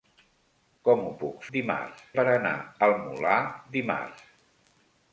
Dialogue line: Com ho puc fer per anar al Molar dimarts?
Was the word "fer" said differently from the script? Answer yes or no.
yes